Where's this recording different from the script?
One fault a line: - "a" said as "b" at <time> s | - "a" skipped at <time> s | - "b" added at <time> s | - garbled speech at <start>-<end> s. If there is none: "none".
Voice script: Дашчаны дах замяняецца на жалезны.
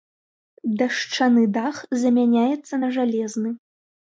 none